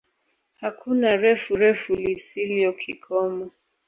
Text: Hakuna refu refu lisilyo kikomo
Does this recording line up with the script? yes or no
yes